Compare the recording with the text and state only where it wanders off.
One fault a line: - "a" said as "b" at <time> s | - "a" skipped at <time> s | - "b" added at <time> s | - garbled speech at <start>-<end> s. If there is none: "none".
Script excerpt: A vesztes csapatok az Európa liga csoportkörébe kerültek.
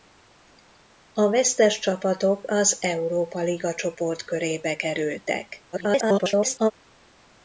- garbled speech at 5.7-6.7 s